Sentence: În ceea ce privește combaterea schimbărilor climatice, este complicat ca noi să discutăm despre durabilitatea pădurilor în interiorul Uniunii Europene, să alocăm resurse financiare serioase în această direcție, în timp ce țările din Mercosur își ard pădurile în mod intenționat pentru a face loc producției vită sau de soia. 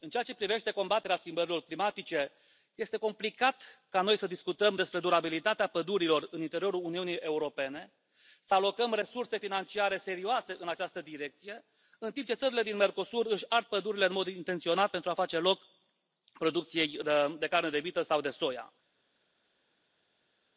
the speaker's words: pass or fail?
fail